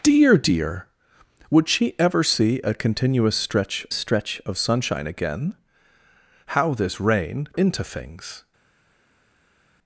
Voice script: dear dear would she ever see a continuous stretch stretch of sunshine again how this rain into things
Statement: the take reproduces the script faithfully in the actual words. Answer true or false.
true